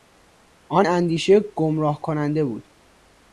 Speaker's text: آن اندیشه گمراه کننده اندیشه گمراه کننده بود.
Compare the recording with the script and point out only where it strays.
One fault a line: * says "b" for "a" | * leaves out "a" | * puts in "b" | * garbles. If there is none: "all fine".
* leaves out "اندیشه گمراه کننده"